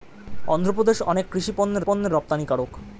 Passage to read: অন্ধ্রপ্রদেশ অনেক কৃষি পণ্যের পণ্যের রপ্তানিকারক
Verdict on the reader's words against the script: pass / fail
pass